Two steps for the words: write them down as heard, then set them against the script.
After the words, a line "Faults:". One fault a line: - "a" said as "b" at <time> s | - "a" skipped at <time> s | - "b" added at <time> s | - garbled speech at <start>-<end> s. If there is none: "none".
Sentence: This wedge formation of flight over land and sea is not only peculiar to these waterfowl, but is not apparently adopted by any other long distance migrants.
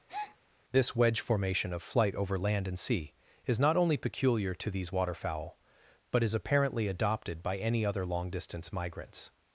This wedge formation of flight over land and sea is not only peculiar to these waterfowl, but is apparently adopted by any other long distance migrants.
Faults:
- "not" skipped at 6.3 s